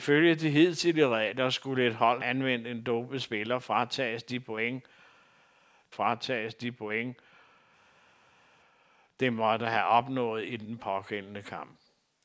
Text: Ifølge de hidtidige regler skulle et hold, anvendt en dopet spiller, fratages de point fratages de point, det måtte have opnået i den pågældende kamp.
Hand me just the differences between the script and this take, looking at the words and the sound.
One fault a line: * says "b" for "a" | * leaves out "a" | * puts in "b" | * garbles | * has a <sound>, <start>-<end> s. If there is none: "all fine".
all fine